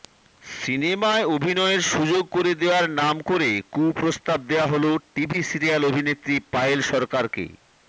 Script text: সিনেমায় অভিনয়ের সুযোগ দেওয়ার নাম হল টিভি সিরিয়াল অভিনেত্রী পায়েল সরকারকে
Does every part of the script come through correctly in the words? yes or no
no